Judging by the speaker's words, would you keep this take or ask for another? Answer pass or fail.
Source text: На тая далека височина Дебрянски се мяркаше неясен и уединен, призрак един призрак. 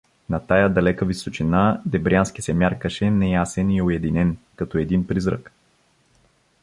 fail